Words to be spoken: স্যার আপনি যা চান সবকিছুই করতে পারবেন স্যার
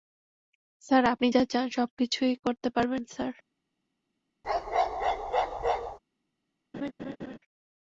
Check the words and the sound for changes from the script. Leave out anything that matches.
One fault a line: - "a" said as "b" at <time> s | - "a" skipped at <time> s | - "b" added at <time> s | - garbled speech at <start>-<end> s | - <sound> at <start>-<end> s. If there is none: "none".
- bark at 4.4-6.0 s
- laugh at 6.7-7.4 s